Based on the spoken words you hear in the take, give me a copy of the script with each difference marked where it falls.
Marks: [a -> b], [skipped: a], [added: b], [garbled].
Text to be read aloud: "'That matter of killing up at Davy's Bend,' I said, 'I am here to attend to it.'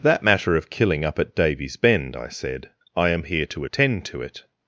"'That matter of killing up at Davy's Bend,' I said, 'I am here to attend to it.'